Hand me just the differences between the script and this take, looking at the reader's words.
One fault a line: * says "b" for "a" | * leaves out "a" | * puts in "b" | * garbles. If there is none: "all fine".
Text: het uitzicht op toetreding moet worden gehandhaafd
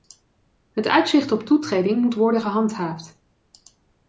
all fine